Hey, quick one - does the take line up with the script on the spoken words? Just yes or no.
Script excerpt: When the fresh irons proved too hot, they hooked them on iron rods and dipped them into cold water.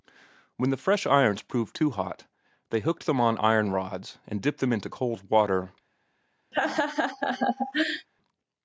yes